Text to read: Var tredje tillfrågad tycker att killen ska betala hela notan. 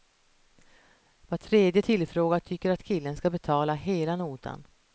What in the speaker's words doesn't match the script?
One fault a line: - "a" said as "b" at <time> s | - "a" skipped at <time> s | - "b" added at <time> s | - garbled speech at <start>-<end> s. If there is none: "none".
none